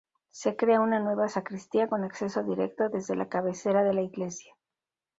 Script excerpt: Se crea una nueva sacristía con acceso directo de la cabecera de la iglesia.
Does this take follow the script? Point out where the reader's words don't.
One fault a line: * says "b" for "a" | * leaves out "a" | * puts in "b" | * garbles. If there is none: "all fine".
* says "desde" for "de"